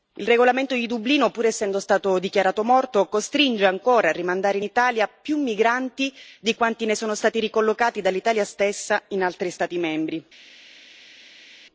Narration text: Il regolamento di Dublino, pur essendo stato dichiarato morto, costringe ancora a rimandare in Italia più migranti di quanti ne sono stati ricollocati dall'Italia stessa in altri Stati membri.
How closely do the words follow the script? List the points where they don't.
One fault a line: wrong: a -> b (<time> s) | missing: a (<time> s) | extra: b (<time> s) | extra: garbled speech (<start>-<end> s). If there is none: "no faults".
no faults